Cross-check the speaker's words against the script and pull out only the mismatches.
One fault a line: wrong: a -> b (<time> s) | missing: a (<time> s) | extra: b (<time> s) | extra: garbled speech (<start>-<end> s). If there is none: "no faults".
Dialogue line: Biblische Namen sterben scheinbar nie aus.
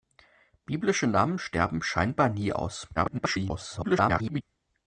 extra: garbled speech (3.0-4.4 s)